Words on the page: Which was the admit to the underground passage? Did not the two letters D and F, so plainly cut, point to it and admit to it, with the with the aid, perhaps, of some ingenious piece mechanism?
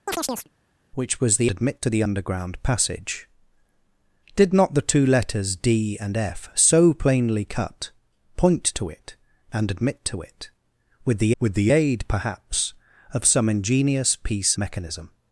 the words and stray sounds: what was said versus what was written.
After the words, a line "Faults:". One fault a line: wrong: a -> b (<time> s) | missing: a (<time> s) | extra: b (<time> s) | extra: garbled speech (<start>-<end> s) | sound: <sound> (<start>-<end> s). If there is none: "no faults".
Which was the admit to the underground passage? Did not the two letters D and F, so plainly cut, point to it and admit to it, with the with the aid, perhaps, of some ingenious piece mechanism?
Faults:
sound: chirp (0.1-0.5 s)